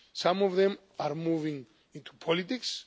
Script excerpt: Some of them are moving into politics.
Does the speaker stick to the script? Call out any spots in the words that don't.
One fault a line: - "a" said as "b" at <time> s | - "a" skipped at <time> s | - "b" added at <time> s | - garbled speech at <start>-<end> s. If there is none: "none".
none